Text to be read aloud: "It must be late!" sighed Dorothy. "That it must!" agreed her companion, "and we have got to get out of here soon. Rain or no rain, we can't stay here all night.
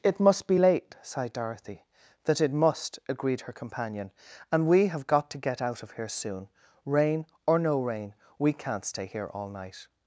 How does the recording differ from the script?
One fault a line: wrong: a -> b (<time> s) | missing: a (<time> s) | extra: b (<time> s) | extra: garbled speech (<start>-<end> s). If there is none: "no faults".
no faults